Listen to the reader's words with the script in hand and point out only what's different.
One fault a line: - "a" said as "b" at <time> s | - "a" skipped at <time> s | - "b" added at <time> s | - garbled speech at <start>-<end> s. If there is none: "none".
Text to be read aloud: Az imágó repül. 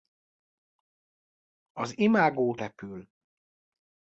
none